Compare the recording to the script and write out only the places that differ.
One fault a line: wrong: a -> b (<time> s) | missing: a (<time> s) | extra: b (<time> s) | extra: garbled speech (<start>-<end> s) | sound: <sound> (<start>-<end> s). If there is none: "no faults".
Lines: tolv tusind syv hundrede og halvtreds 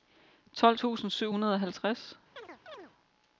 sound: chirp (2.4-2.9 s)